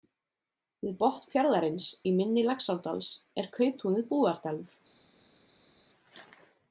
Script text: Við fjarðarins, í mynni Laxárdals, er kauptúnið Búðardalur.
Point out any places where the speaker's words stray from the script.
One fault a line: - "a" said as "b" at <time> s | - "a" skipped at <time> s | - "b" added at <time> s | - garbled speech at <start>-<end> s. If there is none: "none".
- "botn" added at 1.0 s